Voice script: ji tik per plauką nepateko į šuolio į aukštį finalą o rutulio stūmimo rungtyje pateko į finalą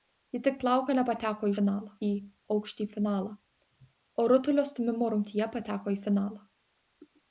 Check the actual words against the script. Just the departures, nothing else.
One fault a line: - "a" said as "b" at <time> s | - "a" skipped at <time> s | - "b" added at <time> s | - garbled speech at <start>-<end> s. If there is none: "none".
- "per" skipped at 0.6 s
- "šuolio" said as "finalą" at 1.6 s